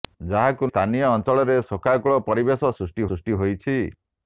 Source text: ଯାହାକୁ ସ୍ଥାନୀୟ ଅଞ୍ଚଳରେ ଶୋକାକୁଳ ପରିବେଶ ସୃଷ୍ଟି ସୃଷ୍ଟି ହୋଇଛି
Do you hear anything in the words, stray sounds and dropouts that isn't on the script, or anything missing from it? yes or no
no